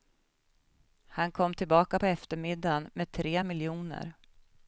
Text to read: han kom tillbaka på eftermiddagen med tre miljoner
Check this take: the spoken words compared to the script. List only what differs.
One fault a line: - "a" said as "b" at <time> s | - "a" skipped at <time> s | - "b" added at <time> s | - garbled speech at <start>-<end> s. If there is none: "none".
none